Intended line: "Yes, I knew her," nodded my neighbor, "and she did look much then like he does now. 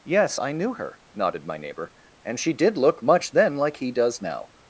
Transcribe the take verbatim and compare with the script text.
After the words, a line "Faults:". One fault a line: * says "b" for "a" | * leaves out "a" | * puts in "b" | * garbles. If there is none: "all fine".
"Yes, I knew her," nodded my neighbor, "and she did look much then like he does now.
Faults:
all fine